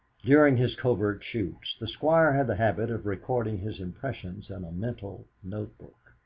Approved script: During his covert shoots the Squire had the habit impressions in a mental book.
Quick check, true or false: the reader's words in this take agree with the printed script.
false